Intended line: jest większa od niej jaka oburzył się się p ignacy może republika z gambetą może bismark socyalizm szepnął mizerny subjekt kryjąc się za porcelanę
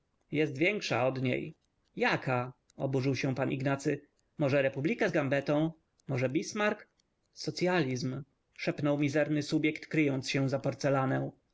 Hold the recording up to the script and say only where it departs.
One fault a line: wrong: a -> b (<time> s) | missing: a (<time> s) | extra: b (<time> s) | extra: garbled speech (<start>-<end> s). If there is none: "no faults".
missing: się (3.4 s)